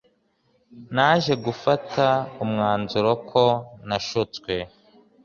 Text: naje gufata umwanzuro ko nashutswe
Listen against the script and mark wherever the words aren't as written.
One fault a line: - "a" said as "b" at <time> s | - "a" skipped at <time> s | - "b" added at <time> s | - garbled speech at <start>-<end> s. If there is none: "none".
none